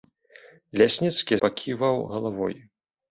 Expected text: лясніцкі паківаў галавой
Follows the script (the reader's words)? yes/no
yes